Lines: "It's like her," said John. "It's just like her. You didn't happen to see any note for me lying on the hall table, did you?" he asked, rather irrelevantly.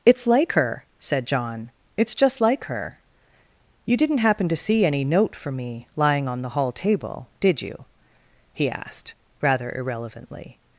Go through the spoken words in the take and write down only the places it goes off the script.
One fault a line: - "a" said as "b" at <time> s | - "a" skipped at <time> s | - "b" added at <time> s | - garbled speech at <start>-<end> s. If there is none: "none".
none